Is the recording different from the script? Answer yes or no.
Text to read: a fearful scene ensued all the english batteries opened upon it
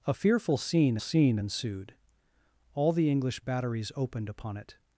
yes